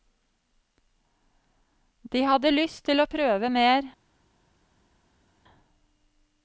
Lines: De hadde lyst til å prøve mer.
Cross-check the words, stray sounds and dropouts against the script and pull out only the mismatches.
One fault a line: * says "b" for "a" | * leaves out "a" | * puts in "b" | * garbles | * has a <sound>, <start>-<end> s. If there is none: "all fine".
all fine